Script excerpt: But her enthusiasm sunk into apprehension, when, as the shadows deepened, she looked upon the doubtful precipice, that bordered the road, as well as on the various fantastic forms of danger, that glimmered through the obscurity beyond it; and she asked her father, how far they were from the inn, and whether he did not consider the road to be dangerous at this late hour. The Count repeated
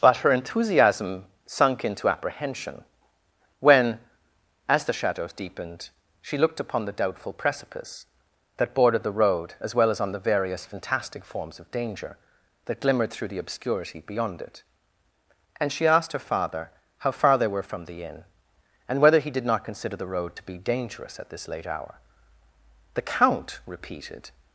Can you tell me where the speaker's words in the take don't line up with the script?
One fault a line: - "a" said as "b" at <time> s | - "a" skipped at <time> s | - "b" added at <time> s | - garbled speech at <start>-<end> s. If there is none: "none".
none